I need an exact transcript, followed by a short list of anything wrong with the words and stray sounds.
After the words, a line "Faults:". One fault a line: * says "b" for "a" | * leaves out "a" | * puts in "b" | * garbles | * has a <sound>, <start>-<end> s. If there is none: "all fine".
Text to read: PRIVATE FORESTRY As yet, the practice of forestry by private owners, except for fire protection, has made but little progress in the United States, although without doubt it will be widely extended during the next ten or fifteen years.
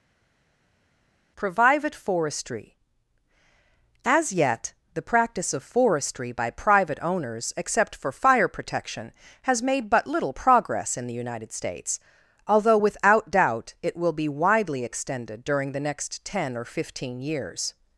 PRIVATE FORESTRY As yet, the practice of forestry by private owners, except for fire protection, has made but little progress in the United States, although without doubt it will be widely extended during the next ten or fifteen years.
Faults:
all fine